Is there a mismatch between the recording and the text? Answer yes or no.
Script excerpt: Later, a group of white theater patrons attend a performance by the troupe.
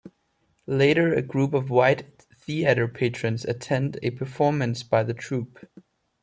no